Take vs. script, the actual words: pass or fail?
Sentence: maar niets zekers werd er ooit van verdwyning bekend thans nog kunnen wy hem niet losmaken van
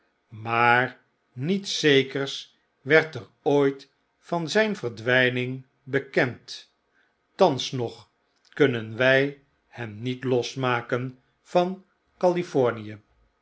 fail